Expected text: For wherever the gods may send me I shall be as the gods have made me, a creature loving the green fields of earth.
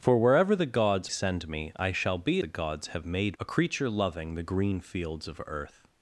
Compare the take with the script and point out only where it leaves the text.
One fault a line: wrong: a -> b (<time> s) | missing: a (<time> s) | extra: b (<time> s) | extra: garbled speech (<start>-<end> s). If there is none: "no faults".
missing: may (1.1 s)
missing: as (2.4 s)
missing: me (3.4 s)